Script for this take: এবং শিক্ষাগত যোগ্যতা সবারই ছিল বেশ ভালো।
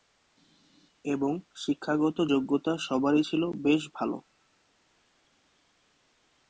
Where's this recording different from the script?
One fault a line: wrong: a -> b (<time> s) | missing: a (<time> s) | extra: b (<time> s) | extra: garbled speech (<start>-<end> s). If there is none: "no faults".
no faults